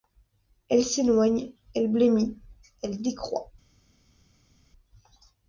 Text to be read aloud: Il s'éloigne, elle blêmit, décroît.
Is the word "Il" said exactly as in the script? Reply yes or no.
no